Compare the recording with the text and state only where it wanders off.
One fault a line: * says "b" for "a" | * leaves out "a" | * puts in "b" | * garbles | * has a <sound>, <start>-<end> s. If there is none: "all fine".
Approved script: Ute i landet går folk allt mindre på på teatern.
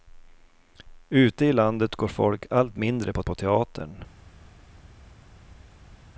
all fine